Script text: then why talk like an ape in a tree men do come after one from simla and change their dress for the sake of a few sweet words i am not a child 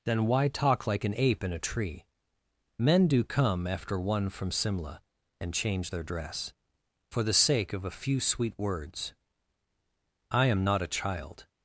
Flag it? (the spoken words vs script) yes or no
no